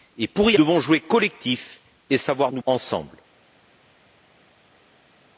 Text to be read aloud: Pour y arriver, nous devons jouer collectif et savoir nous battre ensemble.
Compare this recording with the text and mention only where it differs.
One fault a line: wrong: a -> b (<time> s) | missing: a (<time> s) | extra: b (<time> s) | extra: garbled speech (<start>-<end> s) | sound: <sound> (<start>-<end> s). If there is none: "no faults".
missing: arriver nous (0.6 s)
missing: battre (2.6 s)